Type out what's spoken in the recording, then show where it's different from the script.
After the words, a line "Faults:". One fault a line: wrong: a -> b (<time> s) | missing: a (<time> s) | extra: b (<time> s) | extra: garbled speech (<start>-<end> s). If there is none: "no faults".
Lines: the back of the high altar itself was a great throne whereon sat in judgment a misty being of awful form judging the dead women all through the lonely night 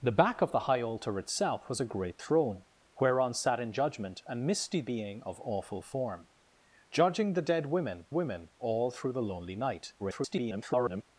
the back of the high altar itself was a great throne whereon sat in judgment a misty being of awful form judging the dead women women all through the lonely night [garbled]
Faults:
extra: women (8.1 s)
extra: garbled speech (10.0-11.0 s)